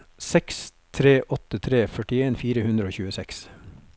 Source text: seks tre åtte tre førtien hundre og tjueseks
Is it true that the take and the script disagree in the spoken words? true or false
true